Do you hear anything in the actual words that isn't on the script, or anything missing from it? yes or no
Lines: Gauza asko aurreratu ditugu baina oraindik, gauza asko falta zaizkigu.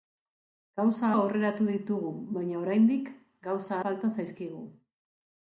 yes